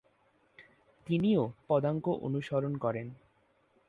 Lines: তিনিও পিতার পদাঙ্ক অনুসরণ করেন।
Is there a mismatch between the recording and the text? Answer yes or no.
yes